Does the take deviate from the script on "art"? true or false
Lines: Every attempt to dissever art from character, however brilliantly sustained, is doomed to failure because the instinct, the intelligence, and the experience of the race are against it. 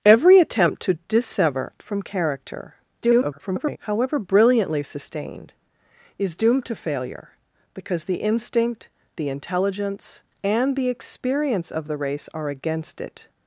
true